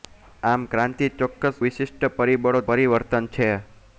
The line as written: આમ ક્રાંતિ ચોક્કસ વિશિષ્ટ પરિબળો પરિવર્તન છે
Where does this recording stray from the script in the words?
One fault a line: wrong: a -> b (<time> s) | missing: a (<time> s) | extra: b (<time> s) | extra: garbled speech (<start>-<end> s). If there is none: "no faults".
no faults